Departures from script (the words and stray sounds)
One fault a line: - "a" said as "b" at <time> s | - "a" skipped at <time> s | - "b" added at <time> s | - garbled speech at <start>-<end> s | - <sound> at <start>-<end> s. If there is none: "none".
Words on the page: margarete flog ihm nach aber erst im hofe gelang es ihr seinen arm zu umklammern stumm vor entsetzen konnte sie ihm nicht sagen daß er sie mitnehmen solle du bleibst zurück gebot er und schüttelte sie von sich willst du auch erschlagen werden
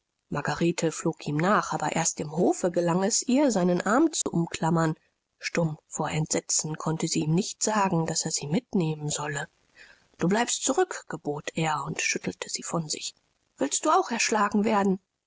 - dropout at 4.2-4.3 s